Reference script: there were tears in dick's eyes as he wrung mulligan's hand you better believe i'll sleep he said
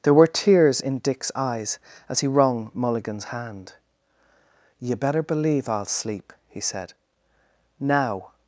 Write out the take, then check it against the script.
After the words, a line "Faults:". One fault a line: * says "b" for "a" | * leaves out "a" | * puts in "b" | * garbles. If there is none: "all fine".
there were tears in dick's eyes as he wrung mulligan's hand you better believe i'll sleep he said now
Faults:
* puts in "now"